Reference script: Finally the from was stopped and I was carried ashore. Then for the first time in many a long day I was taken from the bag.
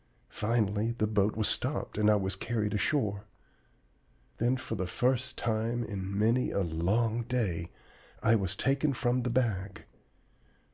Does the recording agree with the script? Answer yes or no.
no